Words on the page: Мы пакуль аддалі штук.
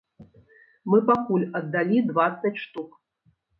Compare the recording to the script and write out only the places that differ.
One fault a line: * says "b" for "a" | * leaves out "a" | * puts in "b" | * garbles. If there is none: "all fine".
* puts in "дваццаць"